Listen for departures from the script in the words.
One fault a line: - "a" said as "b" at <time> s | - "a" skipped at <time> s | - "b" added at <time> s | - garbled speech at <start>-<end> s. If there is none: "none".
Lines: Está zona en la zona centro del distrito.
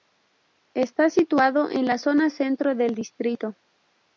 - "zona" said as "situado" at 1.1 s